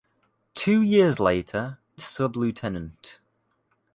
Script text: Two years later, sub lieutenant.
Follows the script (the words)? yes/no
yes